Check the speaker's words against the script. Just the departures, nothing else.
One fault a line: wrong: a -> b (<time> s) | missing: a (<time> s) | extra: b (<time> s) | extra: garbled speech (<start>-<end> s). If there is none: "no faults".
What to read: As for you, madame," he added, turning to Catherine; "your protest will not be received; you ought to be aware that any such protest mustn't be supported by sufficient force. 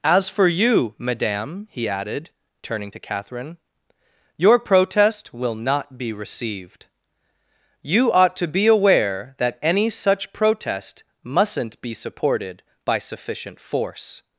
no faults